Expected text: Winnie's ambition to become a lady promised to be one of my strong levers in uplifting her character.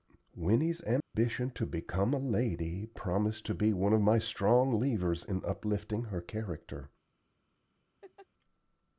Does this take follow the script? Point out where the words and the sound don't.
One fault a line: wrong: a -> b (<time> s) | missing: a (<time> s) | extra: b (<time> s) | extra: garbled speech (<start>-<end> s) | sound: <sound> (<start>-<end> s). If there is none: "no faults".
sound: dropout (1.0-1.1 s)
sound: laugh (8.0-8.3 s)